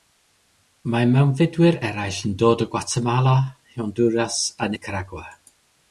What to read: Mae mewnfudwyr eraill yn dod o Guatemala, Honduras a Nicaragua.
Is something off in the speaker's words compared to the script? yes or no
no